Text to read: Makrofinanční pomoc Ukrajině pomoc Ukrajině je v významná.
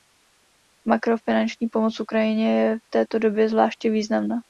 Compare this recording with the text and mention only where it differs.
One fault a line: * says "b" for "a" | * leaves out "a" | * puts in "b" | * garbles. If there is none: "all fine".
* says "je v této době zvláště" for "pomoc Ukrajině je v"